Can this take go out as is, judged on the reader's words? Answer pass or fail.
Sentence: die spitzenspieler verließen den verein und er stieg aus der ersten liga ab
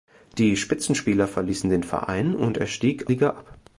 fail